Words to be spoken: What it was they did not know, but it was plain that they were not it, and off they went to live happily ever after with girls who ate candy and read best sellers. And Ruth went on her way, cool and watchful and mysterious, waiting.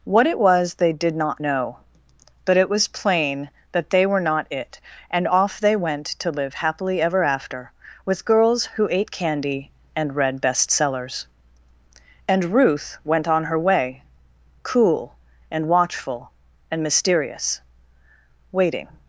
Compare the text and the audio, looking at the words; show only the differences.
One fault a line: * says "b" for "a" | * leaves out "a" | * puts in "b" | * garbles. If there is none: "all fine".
all fine